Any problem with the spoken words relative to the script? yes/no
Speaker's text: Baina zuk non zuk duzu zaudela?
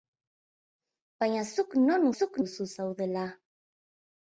no